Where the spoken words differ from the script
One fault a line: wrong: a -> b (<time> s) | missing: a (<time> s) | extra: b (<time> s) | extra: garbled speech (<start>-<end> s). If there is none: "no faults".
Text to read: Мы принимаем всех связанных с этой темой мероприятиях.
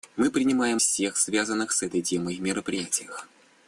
no faults